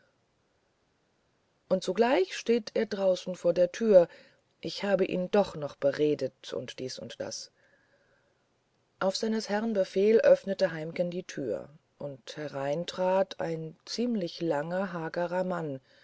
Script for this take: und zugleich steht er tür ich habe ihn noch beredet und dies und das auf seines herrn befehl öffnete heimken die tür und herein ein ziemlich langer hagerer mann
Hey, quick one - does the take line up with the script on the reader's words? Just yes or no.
no